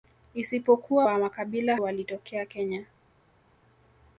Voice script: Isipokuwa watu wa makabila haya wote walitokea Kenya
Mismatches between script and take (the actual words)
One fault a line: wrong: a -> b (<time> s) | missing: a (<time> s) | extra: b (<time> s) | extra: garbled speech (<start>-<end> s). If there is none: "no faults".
missing: watu (1.1 s)
missing: haya wote (1.8 s)